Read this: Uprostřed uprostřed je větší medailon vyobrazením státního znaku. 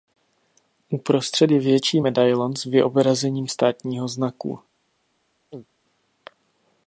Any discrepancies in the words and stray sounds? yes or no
yes